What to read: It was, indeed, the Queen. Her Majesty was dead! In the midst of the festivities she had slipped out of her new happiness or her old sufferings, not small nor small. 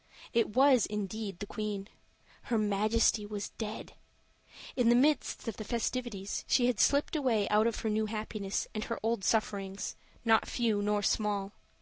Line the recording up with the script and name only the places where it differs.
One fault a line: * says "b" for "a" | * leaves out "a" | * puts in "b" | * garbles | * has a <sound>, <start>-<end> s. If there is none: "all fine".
* puts in "away"
* says "and" for "or"
* says "few" for "small"